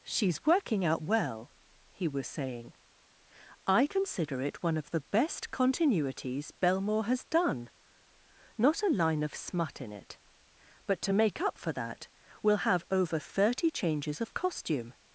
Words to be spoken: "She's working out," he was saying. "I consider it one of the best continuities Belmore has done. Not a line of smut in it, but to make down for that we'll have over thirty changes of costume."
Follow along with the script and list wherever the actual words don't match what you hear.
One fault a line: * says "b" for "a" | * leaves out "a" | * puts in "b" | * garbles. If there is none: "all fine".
* puts in "well"
* says "up" for "down"